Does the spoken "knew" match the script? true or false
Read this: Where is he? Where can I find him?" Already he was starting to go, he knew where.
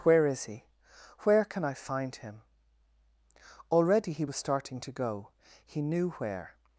true